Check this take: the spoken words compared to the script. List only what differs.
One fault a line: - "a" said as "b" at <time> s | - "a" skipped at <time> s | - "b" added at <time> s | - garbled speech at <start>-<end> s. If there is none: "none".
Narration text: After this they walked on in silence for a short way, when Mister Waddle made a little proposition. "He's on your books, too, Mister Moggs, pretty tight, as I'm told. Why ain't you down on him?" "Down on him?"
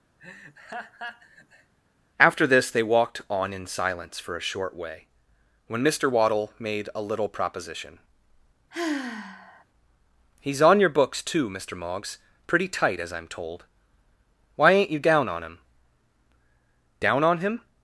none